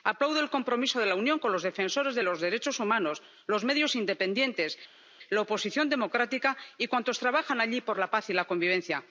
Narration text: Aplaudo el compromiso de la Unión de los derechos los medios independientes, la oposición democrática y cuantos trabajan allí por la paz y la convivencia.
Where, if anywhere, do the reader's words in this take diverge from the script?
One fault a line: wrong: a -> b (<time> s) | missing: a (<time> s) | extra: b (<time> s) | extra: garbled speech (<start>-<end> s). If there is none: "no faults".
extra: con los defensores (1.4 s)
extra: humanos (2.8 s)